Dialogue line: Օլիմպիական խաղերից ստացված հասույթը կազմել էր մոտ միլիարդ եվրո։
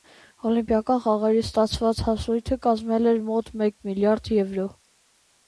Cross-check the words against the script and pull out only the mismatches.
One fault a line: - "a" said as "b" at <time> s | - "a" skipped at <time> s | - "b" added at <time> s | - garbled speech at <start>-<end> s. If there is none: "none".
- "մեկ" added at 3.7 s